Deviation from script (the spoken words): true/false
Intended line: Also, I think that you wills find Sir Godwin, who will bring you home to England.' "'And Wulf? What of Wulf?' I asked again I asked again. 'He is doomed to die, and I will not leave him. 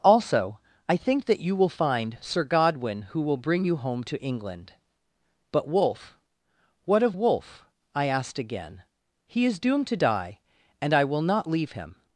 true